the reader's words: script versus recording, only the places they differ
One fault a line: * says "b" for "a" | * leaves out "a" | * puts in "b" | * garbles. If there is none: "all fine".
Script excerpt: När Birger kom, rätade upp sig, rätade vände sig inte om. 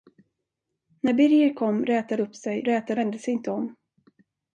all fine